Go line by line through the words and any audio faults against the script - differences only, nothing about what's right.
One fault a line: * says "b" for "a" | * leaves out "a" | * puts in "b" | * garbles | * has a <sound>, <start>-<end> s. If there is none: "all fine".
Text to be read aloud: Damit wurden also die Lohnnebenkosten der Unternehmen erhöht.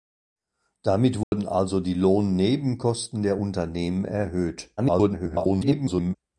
* has a dropout, 1.2-1.3 s
* garbles